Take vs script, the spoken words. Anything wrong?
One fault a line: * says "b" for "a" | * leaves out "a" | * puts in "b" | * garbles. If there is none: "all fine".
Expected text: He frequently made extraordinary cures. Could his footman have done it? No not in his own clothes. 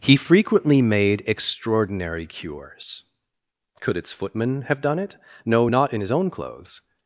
* says "its" for "his"